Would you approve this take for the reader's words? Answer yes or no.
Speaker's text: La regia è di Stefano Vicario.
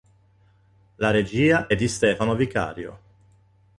yes